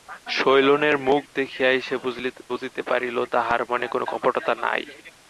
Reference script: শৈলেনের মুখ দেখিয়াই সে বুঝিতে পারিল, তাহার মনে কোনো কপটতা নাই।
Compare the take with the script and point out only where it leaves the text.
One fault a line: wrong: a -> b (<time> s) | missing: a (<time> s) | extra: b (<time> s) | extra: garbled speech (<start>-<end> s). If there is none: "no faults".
no faults